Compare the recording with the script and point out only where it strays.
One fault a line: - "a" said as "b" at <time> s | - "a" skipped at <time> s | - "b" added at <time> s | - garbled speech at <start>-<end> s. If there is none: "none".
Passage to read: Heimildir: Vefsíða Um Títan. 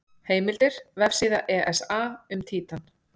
- "ESA" added at 1.6 s